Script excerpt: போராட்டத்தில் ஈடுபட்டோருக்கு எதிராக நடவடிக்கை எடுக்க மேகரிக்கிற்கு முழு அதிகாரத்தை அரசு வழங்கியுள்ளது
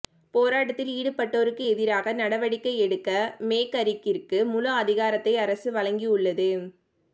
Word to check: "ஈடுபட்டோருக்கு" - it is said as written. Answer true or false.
true